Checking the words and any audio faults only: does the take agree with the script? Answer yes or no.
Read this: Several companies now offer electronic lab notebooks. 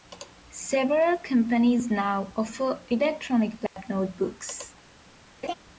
no